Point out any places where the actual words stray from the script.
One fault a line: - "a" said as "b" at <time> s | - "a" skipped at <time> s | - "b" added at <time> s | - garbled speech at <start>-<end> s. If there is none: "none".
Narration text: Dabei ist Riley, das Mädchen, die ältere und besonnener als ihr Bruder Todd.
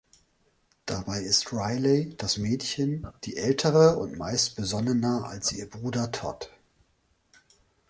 - "meist" added at 4.2 s